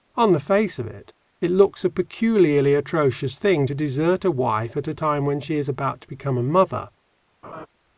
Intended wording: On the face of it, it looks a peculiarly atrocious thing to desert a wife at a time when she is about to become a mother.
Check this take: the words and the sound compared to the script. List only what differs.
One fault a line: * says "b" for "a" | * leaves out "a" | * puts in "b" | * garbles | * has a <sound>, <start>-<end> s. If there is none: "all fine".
* has a laugh, 7.4-7.7 s